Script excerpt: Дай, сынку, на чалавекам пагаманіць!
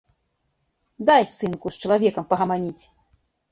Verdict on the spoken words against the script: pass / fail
fail